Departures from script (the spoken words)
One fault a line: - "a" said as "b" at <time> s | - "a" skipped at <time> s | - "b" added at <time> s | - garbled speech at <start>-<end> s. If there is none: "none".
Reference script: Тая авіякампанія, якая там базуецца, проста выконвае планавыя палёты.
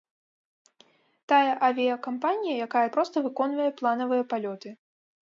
- "там базуецца" skipped at 2.9 s